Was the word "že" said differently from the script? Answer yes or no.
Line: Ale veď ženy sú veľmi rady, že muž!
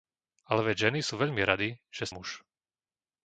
no